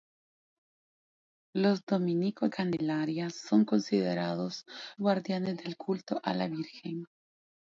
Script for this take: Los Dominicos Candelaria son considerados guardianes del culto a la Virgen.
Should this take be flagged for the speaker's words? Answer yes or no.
no